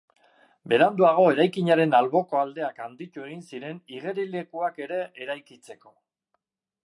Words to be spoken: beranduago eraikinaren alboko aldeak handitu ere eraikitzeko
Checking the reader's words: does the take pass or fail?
fail